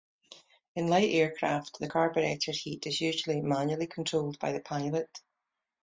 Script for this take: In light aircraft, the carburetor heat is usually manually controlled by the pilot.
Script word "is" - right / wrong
right